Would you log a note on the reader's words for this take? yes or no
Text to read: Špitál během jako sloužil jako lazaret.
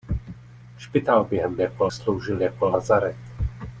no